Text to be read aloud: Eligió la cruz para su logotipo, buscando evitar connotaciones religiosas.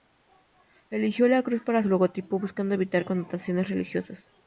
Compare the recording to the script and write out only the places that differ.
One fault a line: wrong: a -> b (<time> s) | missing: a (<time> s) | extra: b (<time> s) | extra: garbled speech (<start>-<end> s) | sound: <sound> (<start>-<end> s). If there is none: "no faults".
no faults